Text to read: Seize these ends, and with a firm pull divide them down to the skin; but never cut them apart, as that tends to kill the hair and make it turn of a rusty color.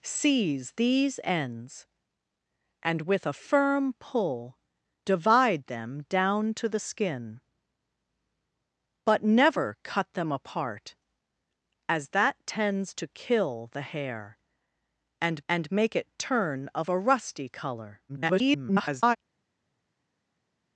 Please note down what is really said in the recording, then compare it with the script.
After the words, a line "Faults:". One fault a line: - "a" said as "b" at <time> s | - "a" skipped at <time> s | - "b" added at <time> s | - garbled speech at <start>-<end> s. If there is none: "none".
Seize these ends, and with a firm pull divide them down to the skin; but never cut them apart, as that tends to kill the hair and and make it turn of a rusty color. [garbled]
Faults:
- "and" added at 15.5 s
- garbled speech at 18.1-19.2 s